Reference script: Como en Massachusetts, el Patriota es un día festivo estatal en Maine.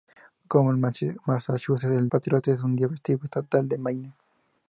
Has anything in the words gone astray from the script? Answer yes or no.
no